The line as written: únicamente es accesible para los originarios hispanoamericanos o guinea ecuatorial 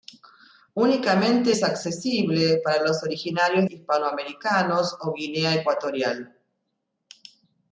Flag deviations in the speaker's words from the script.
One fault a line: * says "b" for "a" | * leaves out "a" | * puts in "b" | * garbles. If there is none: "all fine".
all fine